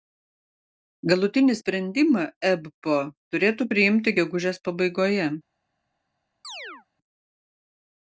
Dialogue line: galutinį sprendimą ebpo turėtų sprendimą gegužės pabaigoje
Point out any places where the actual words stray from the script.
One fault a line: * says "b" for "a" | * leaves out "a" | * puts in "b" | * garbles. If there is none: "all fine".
* says "priimti" for "sprendimą"